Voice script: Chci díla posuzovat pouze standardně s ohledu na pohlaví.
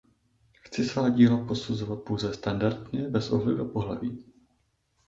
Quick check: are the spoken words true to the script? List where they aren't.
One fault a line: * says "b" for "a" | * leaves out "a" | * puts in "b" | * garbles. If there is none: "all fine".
* puts in "svá"
* says "bez" for "s"